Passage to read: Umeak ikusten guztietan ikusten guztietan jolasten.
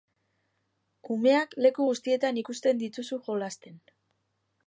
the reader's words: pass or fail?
fail